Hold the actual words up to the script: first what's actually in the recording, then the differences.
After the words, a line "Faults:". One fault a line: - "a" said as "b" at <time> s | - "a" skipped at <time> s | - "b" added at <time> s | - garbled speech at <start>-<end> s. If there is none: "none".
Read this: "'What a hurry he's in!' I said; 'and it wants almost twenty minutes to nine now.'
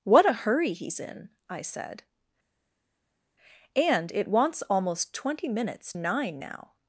"'What a hurry he's in!' I said; 'and it wants almost twenty minutes nine now.'
Faults:
- "to" skipped at 5.9 s